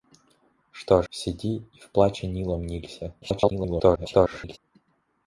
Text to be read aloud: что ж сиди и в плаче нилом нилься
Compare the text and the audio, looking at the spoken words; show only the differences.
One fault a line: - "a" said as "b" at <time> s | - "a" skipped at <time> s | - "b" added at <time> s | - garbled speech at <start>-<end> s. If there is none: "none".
- "ж" skipped at 1.0 s
- garbled speech at 3.2-4.6 s